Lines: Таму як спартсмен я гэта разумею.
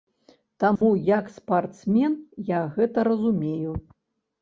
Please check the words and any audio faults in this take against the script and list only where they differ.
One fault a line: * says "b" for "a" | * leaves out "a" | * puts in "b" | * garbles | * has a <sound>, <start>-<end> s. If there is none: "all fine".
* has a dropout, 0.8-0.8 s